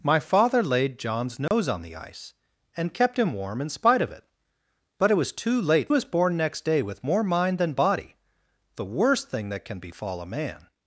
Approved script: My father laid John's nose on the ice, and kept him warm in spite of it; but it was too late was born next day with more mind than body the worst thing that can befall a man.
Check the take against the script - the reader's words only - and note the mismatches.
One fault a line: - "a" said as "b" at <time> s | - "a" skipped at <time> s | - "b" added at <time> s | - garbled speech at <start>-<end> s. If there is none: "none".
none